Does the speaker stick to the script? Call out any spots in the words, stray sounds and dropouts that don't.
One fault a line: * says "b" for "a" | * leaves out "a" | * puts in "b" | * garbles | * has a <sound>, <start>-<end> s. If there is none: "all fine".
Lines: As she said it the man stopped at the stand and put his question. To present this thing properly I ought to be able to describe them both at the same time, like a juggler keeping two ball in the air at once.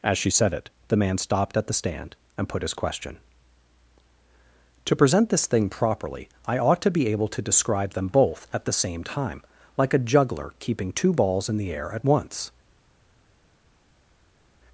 * says "balls" for "ball"